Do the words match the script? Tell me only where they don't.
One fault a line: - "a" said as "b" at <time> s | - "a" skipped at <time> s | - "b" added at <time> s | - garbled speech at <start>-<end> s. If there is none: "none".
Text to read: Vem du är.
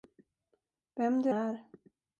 none